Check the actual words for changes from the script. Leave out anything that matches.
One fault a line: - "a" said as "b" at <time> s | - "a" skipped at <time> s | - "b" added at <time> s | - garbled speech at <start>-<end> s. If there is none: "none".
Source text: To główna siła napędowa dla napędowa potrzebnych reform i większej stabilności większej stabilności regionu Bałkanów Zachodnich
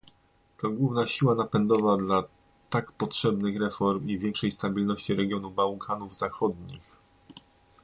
- "napędowa" said as "tak" at 2.7 s
- "większej stabilności" skipped at 5.2 s